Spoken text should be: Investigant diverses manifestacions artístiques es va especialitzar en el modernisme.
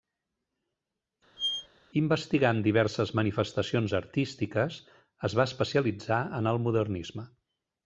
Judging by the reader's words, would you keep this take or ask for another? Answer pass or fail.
pass